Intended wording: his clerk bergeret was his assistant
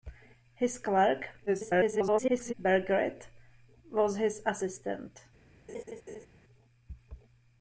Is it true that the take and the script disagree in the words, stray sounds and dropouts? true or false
true